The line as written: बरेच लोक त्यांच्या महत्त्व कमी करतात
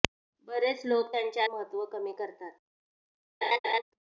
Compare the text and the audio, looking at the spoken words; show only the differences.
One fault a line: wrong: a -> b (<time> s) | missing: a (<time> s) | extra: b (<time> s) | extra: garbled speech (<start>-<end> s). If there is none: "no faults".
no faults